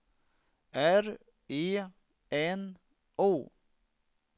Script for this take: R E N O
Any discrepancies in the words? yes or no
no